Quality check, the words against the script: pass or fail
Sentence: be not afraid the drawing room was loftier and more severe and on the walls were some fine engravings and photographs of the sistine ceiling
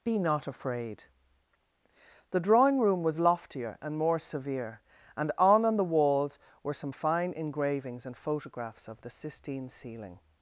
fail